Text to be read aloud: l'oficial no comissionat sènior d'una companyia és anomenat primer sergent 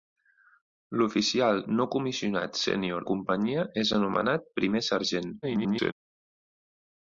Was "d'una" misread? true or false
true